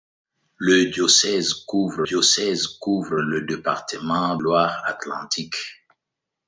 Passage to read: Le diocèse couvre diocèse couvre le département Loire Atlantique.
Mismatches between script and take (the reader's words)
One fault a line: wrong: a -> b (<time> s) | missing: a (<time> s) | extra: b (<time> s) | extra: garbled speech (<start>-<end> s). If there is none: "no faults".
no faults